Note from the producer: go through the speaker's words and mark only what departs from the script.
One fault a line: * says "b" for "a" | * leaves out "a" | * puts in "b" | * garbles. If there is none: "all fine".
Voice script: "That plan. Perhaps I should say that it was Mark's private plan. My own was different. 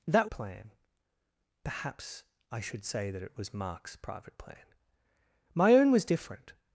all fine